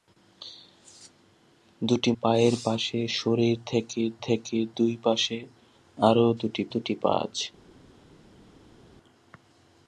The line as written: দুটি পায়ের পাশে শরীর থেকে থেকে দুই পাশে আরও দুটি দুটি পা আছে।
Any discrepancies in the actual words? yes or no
no